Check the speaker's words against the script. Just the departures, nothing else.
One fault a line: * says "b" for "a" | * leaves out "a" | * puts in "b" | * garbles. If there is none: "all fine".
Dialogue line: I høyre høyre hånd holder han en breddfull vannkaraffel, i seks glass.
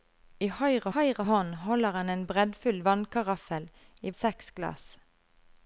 all fine